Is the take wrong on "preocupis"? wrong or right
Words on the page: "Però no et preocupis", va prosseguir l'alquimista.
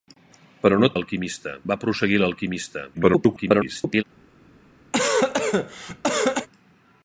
wrong